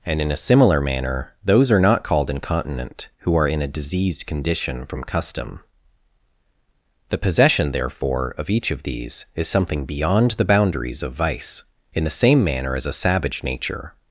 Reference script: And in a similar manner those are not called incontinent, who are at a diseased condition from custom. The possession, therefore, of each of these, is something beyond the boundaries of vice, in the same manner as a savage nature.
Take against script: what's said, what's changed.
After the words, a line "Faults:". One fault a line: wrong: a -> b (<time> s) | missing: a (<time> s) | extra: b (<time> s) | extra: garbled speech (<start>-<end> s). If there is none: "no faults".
And in a similar manner those are not called incontinent, who are in a diseased condition from custom. The possession, therefore, of each of these, is something beyond the boundaries of vice, in the same manner as a savage nature.
Faults:
wrong: at -> in (3.5 s)